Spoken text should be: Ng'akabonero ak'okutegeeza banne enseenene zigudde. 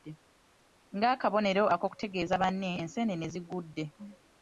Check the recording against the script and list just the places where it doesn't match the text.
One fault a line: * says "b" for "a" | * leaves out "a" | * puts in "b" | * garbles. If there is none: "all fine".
all fine